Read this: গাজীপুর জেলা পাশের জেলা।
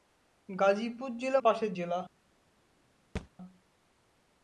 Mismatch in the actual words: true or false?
false